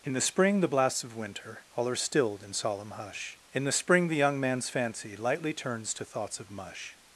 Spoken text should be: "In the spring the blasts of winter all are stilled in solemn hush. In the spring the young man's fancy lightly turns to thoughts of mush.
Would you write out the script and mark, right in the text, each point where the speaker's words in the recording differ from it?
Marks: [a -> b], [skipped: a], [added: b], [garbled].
"In the spring the blasts of winter all are stilled in solemn hush. In the spring the young man's fancy lightly turns to thoughts of mush.